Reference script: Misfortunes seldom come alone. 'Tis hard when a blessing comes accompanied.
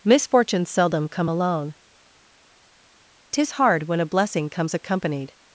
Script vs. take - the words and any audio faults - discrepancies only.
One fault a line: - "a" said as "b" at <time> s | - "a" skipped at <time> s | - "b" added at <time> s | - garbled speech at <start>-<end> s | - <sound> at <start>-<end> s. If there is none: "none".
none